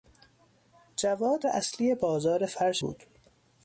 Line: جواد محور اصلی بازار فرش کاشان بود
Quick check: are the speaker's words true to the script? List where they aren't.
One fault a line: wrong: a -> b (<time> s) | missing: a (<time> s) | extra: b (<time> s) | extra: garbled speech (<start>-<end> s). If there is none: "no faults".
missing: محور (1.5 s)
missing: کاشان (2.8 s)